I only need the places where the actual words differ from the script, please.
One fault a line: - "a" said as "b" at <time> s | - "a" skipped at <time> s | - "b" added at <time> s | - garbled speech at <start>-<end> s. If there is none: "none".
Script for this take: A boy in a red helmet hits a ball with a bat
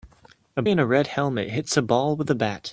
- "boy" skipped at 0.6 s